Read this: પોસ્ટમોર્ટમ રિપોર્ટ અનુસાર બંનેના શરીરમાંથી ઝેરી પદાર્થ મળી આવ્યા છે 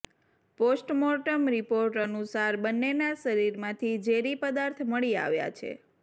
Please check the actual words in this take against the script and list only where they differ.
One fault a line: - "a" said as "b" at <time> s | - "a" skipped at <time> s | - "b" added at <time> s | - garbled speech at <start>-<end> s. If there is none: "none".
none